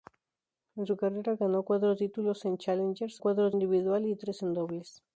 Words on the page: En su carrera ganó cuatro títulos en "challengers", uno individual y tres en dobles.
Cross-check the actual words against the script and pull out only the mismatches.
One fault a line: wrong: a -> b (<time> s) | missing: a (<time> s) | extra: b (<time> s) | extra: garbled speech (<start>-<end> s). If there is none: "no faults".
wrong: uno -> cuatro (3.2 s)